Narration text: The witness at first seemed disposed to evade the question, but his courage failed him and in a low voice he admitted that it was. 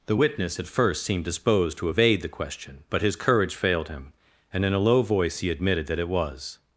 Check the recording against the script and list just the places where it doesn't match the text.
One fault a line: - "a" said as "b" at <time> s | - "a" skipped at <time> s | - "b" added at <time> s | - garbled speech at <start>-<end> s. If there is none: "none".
none